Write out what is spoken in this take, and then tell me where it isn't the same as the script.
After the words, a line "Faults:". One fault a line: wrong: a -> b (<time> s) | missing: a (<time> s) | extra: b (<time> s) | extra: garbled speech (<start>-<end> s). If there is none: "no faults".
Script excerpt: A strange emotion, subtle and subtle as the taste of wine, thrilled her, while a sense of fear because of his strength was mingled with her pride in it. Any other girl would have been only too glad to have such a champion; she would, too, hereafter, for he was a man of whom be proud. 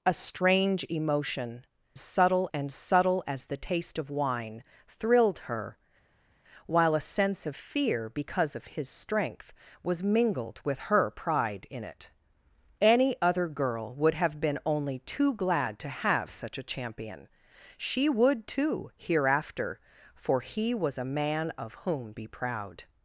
A strange emotion, subtle and subtle as the taste of wine, thrilled her, while a sense of fear because of his strength was mingled with her pride in it. Any other girl would have been only too glad to have such a champion; she would, too, hereafter, for he was a man of whom be proud.
Faults:
no faults